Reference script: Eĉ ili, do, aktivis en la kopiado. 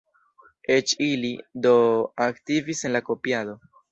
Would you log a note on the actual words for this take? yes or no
no